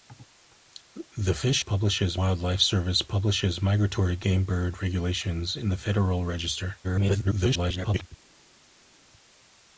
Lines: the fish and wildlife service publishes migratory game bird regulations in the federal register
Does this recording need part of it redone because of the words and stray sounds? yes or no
yes